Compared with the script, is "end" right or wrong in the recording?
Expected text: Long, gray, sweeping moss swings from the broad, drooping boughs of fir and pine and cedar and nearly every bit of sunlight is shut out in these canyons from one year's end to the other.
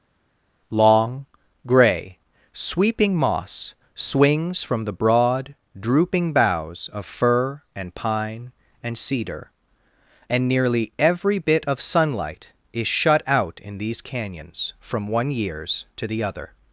wrong